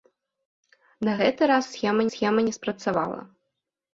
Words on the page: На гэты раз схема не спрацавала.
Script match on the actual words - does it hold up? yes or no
no